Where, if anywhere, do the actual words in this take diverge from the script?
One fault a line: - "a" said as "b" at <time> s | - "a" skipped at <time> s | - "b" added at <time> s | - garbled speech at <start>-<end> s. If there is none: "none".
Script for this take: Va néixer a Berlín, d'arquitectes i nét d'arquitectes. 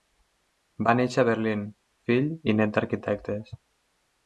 - "d'arquitectes" said as "fill" at 2.1 s